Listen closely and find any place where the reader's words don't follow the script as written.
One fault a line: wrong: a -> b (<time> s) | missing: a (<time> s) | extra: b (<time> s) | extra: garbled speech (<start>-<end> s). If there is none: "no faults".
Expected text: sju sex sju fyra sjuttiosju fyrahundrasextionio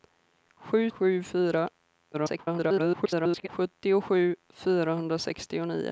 missing: sex (0.8 s)
extra: garbled speech (2.1-3.5 s)